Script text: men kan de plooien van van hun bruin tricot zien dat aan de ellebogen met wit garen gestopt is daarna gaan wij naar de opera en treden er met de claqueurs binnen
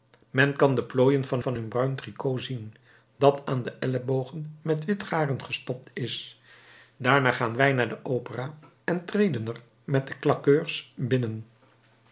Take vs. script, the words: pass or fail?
pass